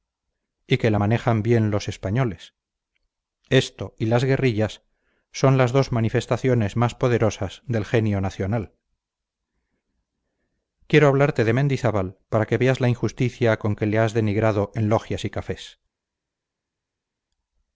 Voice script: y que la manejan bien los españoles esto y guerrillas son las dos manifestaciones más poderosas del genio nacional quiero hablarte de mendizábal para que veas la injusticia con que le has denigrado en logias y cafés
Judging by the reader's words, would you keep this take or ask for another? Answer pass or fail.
fail